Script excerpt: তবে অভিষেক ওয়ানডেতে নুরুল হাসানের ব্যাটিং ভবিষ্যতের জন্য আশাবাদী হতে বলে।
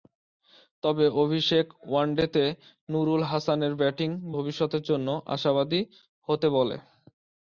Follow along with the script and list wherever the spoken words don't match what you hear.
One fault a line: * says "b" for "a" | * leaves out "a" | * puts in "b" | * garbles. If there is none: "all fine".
all fine